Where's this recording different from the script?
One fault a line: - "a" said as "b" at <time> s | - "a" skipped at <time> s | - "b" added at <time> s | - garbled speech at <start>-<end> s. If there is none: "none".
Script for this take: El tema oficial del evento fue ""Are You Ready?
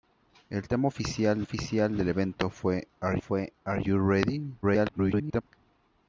- "oficial" added at 1.4 s
- "fue Are" added at 3.2 s
- garbled speech at 4.6-5.4 s